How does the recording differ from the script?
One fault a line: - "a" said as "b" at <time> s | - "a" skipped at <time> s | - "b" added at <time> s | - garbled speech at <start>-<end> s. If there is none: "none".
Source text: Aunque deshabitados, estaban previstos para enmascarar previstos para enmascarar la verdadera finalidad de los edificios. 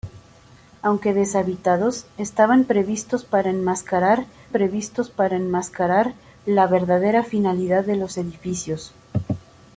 none